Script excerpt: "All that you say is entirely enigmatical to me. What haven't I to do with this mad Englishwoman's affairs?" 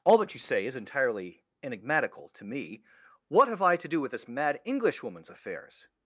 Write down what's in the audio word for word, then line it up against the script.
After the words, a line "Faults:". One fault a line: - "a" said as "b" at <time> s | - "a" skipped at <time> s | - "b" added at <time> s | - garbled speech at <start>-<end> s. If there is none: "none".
"All that you say is entirely enigmatical to me. What have I to do with this mad Englishwoman's affairs?"
Faults:
- "haven't" said as "have" at 3.5 s